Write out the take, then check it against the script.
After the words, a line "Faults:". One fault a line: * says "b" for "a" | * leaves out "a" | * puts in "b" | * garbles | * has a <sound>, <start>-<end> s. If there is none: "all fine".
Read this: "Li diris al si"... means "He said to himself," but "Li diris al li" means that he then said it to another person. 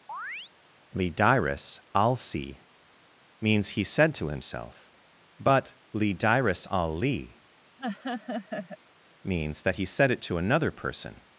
"Li diris al si"... means "He said to himself," but "Li diris al li" means that he said it to another person.
Faults:
* has a chirp, 0.1-0.5 s
* has a laugh, 7.8-8.8 s
* leaves out "then"